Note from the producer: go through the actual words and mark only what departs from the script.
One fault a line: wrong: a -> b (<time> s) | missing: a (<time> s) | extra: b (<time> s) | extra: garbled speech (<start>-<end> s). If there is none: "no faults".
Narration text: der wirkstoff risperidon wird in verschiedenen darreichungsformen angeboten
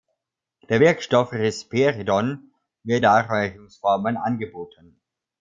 missing: in verschiedenen (3.0 s)